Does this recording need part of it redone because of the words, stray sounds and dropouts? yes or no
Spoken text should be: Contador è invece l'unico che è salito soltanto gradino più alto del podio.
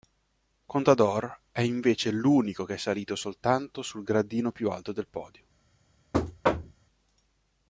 yes